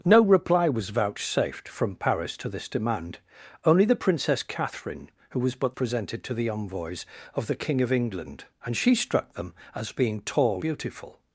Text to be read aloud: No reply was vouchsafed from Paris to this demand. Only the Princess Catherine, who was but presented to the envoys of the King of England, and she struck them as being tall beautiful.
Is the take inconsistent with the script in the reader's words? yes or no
no